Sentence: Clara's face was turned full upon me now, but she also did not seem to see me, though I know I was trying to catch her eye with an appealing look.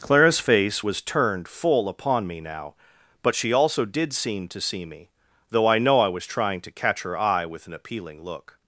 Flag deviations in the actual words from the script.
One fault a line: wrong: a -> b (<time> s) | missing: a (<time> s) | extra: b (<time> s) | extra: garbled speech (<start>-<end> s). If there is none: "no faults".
missing: not (4.1 s)